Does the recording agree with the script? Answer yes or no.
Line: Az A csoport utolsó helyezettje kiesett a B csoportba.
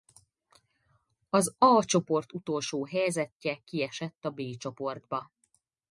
yes